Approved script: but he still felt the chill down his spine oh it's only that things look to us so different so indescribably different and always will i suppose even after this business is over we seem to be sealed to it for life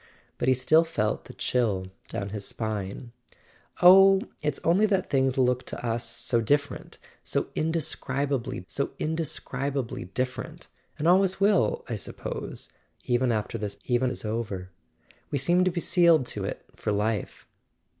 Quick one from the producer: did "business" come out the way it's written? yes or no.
no